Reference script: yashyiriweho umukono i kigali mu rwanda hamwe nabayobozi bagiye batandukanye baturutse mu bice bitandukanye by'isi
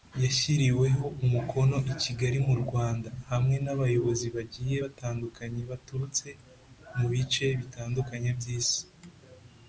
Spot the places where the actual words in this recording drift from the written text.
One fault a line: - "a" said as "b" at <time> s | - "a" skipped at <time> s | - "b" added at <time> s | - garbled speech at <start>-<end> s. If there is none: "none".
none